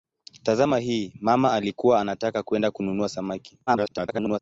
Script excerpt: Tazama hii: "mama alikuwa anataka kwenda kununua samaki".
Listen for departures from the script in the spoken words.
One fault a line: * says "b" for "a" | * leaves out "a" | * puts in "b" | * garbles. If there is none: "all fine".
* garbles